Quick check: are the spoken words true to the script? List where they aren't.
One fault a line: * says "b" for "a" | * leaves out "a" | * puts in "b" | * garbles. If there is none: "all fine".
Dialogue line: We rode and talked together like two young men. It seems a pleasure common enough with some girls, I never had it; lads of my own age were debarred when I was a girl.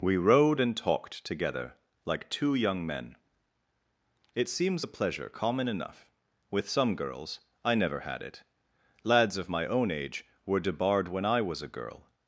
all fine